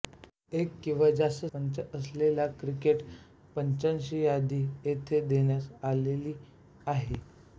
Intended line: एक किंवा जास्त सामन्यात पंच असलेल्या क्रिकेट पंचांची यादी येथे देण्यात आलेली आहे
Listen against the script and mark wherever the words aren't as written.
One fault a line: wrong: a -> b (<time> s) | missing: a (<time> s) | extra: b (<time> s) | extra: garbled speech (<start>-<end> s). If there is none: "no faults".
missing: सामन्यात (1.4 s)